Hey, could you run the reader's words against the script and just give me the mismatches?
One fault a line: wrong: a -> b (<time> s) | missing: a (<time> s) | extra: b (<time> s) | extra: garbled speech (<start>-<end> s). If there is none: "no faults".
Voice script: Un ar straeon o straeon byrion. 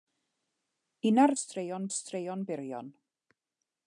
no faults